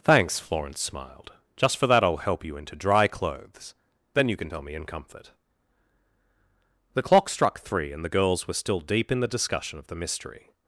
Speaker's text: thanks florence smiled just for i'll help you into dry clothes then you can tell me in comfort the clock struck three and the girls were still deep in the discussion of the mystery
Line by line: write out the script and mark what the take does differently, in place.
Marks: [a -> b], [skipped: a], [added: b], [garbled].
thanks florence smiled just for [added: that] i'll help you into dry clothes then you can tell me in comfort the clock struck three and the girls were still deep in the discussion of the mystery